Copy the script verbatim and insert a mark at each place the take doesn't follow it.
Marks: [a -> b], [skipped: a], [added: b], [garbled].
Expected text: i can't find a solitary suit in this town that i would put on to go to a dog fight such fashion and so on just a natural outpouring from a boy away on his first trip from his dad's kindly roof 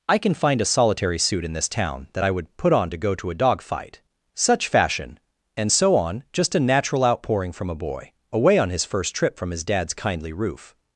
i [can't -> can] find a solitary suit in this town that i would put on to go to a dog fight such fashion and so on just a natural outpouring from a boy away on his first trip from his dad's kindly roof